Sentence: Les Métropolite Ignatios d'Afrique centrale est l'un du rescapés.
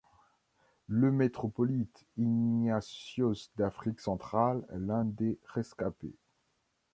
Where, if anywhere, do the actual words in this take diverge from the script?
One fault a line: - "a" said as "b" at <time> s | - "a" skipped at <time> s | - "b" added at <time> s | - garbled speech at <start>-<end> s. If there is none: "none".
- "Les" said as "Le" at 0.9 s
- "du" said as "des" at 5.0 s